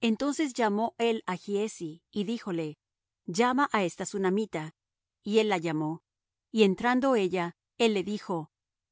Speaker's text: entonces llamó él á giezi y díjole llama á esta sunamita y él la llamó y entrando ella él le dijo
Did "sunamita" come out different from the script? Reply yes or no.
no